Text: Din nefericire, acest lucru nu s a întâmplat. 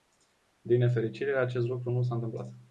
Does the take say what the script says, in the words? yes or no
yes